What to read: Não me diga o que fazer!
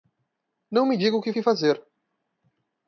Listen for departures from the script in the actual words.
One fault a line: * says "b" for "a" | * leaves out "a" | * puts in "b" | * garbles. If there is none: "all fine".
* puts in "que"